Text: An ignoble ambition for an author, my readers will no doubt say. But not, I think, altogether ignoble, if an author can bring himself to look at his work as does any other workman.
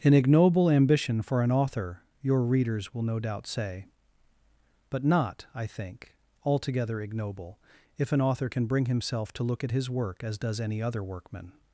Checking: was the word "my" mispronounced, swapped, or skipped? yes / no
yes